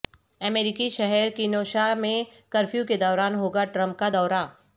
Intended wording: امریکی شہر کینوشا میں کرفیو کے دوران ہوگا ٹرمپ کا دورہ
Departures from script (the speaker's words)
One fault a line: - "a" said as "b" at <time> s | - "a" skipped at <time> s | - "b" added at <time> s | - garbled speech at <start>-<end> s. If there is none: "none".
none